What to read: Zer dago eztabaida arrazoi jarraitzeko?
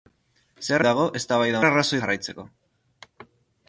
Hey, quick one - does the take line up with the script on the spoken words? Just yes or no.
yes